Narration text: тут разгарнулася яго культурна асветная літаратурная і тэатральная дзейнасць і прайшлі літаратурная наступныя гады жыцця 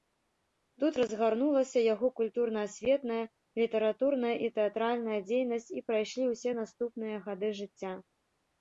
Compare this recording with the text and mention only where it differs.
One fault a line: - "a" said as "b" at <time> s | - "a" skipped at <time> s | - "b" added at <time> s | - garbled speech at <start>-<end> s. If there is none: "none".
- "літаратурная" said as "ўсе" at 6.4 s